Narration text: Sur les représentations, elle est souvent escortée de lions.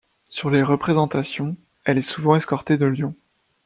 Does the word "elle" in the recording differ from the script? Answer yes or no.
no